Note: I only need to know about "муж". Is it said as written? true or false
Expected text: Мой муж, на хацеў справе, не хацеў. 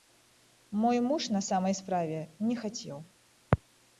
true